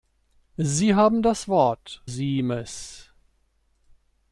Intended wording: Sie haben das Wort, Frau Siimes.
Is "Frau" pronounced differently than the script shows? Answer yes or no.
yes